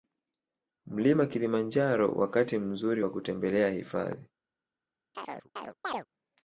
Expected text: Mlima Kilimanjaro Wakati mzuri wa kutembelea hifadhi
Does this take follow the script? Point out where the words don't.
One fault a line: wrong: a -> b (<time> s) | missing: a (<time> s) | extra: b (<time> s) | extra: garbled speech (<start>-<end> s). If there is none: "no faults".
no faults